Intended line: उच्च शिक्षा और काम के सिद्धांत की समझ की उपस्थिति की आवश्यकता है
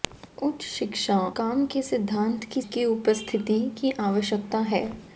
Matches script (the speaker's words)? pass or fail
fail